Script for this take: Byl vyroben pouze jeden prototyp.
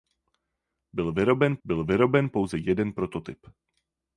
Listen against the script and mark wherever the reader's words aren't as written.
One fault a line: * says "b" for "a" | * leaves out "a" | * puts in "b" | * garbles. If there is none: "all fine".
* puts in "byl vyroben"